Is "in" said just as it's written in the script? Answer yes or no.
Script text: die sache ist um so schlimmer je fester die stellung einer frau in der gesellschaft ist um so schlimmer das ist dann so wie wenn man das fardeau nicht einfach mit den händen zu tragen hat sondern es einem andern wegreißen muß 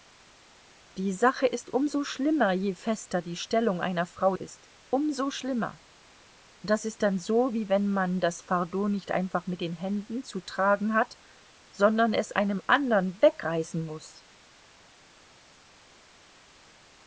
no